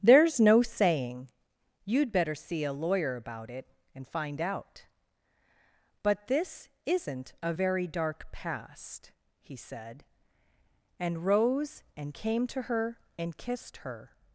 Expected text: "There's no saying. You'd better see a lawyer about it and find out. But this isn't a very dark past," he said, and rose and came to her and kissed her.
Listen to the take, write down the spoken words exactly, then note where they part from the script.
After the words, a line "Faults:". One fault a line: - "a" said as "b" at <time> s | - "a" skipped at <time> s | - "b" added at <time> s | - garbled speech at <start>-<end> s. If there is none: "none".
"There's no saying. You'd better see a lawyer about it and find out. But this isn't a very dark past," he said, and rose and came to her and kissed her.
Faults:
none